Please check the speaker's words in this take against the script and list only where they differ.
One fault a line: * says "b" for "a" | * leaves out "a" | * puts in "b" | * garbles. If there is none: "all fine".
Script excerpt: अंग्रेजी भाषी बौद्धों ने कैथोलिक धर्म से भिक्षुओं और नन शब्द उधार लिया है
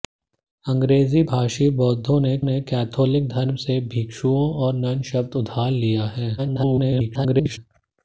* puts in "ने"
* garbles